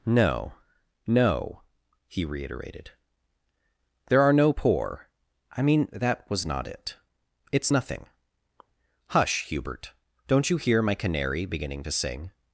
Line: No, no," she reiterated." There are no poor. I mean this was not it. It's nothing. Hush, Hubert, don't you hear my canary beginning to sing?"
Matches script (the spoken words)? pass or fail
fail